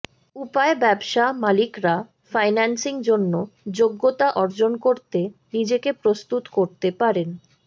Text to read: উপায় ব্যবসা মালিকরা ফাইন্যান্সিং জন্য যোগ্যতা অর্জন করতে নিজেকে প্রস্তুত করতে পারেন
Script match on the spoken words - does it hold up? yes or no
yes